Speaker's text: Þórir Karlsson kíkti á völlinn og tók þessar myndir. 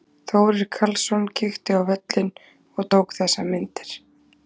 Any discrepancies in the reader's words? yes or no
no